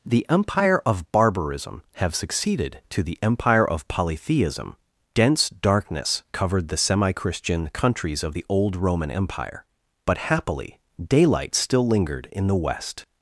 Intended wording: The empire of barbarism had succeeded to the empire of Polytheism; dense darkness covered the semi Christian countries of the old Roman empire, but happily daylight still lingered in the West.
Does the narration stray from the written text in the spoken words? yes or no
yes